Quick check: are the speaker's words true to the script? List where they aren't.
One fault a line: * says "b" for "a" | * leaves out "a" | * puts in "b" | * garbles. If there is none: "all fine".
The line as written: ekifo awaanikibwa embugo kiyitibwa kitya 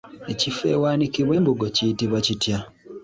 all fine